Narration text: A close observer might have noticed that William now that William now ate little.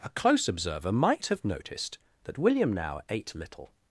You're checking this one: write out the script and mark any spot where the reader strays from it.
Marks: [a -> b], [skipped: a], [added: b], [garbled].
A close observer might have noticed that William now [skipped: that William now] ate little.